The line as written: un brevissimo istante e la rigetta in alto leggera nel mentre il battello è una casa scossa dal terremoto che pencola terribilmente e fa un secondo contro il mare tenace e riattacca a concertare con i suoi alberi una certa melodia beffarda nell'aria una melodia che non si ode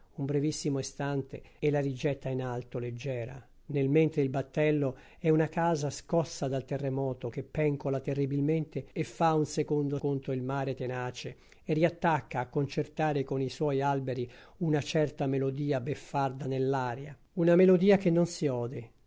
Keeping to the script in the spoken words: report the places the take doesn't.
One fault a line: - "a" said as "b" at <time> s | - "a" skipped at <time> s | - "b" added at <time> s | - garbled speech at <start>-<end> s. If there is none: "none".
none